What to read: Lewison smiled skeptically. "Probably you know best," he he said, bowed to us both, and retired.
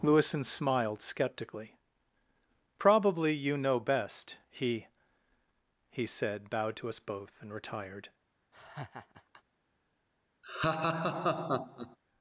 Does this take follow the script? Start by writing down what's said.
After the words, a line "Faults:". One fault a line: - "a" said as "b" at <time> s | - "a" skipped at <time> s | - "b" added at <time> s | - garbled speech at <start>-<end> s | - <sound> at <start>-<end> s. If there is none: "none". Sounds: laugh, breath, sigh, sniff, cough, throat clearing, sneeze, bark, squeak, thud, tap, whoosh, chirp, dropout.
Lewison smiled skeptically. "Probably you know best," he he said, bowed to us both, and retired.
Faults:
- laugh at 8.5-9.4 s
- laugh at 10.4-12.0 s